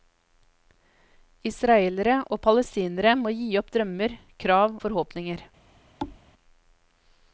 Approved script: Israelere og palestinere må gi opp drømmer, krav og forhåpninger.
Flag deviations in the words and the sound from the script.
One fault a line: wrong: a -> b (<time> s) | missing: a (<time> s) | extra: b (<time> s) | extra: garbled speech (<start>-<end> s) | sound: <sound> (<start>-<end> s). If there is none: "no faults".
missing: og (4.8 s)
sound: thud (6.0-6.2 s)